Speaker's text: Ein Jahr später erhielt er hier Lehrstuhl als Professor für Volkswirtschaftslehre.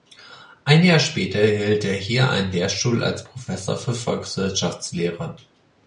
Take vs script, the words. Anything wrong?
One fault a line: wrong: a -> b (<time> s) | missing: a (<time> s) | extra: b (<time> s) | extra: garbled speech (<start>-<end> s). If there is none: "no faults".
extra: einen (2.3 s)